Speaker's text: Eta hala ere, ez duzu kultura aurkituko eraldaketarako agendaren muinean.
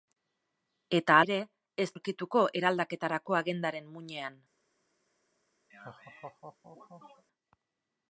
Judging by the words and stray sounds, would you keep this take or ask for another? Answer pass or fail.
fail